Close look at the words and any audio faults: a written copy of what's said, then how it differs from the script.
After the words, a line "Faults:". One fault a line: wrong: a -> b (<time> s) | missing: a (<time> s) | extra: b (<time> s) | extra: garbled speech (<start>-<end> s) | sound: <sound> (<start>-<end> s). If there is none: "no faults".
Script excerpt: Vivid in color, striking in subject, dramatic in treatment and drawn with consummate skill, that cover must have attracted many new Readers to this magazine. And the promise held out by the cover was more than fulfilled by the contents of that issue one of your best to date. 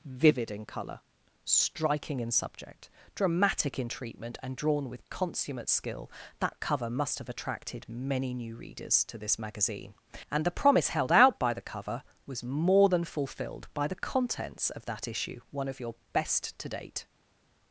Vivid in color, striking in subject, dramatic in treatment and drawn with consummate skill, that cover must have attracted many new Readers to this magazine. And the promise held out by the cover was more than fulfilled by the contents of that issue one of your best to date.
Faults:
no faults